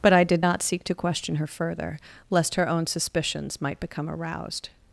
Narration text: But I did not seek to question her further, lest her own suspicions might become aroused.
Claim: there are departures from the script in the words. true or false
false